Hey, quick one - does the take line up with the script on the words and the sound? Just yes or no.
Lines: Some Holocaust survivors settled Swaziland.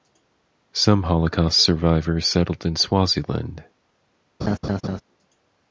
no